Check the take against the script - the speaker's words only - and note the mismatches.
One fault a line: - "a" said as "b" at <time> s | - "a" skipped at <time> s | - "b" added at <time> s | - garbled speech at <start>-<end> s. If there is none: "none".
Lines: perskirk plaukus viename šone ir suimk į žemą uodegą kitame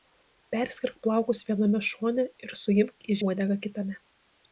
- "žemą" skipped at 3.2 s